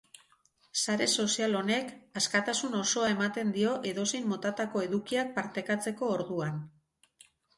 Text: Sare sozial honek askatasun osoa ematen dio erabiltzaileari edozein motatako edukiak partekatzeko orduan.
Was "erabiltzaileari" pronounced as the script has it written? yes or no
no